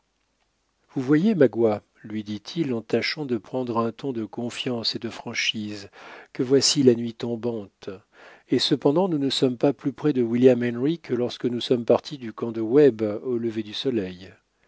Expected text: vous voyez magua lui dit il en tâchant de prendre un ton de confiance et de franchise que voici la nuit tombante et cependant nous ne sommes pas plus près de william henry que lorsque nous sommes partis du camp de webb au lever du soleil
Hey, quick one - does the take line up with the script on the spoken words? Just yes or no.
yes